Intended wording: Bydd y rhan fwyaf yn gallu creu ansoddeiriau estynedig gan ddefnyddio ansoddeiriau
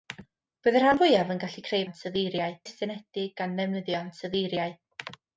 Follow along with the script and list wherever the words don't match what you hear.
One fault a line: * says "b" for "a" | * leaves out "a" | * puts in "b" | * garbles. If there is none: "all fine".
all fine